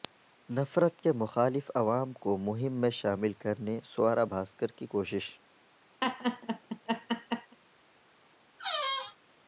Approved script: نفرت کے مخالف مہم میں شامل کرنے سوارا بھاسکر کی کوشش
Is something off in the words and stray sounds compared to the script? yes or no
yes